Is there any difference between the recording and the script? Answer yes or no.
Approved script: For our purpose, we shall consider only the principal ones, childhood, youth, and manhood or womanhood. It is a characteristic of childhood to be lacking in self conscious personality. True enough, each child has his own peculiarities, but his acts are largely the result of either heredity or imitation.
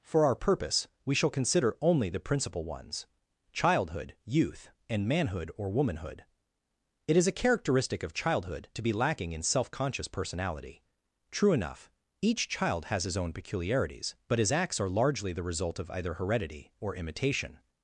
no